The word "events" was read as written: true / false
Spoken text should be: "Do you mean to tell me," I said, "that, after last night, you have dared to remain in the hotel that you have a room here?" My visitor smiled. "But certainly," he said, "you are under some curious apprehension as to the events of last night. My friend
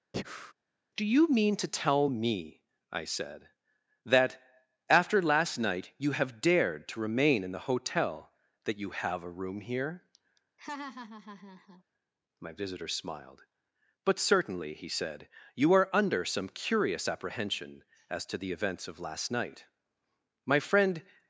true